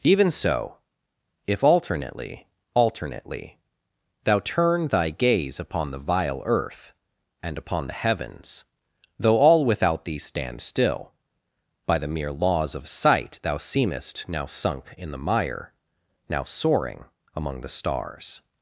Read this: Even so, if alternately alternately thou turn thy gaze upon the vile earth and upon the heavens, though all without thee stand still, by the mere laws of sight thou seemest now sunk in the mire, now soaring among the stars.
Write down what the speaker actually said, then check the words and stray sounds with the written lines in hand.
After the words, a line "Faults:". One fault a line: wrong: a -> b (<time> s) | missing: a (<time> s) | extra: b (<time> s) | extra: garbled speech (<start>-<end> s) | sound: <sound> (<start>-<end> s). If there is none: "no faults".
Even so, if alternately alternately thou turn thy gaze upon the vile earth and upon the heavens, though all without thee stand still, by the mere laws of sight thou seemest now sunk in the mire, now soaring among the stars.
Faults:
no faults